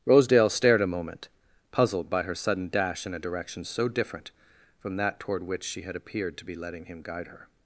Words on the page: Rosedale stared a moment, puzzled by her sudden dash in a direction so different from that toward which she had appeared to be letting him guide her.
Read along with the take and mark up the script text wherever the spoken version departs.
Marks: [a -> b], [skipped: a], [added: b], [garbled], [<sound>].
Rosedale stared a moment, puzzled by her sudden dash in a direction so different from that toward which she had appeared to be letting him guide her.